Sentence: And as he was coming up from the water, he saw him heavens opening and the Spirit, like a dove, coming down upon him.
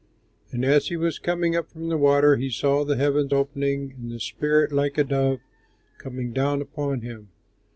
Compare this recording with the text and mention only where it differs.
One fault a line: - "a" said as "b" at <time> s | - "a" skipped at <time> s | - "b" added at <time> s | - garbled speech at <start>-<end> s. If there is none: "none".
- "him" said as "the" at 2.8 s